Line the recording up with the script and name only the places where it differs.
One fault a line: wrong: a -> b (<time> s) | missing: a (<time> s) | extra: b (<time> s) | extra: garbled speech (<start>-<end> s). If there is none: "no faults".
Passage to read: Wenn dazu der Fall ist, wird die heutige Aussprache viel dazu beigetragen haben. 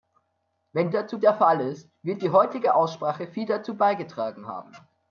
no faults